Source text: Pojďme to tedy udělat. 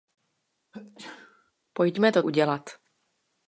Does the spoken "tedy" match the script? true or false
false